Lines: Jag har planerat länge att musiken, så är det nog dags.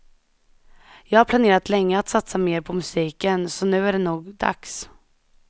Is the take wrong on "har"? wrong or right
right